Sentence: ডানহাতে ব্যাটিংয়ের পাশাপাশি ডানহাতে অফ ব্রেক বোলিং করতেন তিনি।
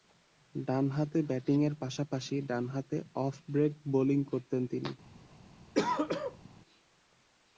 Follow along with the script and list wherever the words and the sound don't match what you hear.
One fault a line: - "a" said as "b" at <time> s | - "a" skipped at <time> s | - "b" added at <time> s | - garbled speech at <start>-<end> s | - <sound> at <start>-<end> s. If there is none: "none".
- throat clearing at 5.7-6.5 s